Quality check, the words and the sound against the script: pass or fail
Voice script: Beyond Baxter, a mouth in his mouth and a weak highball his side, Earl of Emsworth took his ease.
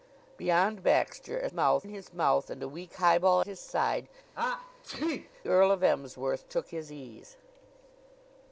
fail